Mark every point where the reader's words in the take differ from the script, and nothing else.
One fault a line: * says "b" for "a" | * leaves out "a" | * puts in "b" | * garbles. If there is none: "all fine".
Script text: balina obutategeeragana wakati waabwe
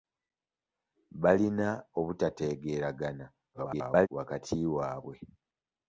* garbles